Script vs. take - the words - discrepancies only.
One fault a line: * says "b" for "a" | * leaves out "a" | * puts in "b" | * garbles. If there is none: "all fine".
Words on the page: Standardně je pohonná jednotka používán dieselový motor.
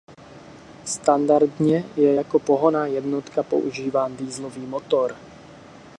* puts in "jako"